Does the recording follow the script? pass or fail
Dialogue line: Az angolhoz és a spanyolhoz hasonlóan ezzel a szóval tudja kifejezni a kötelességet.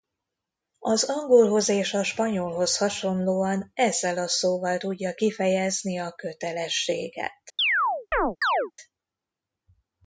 pass